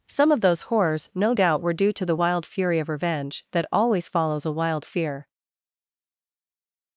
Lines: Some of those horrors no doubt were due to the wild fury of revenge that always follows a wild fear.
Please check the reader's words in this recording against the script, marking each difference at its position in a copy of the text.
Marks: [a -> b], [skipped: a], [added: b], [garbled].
Some of those horrors no doubt were due to the wild fury of revenge that always follows a wild fear.